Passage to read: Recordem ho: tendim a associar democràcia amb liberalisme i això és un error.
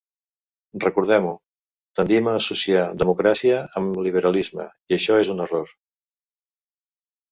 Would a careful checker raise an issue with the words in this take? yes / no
no